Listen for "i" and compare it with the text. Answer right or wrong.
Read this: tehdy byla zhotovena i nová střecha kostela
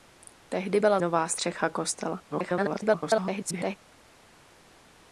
wrong